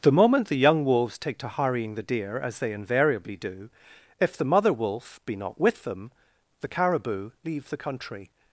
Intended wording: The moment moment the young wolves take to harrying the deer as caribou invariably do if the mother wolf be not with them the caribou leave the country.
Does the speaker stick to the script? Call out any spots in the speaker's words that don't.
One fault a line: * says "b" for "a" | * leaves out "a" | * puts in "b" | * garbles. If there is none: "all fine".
* leaves out "moment"
* says "they" for "caribou"